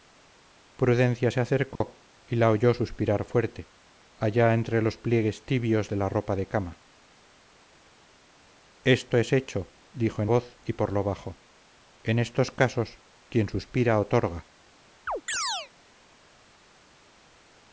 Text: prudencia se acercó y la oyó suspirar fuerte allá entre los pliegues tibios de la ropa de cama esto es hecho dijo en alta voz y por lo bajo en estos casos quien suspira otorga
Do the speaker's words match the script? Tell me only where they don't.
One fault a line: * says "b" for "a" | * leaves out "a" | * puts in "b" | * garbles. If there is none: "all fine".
* leaves out "alta"